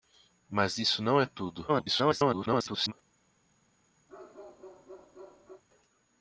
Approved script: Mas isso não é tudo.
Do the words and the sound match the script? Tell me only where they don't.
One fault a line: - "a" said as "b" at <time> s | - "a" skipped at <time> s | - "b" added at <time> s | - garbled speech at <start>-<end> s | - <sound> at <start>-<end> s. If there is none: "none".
- garbled speech at 1.7-2.9 s
- bark at 4.1-5.6 s